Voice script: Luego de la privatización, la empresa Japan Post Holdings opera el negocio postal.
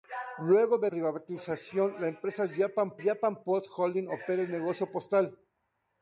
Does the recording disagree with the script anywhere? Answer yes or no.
yes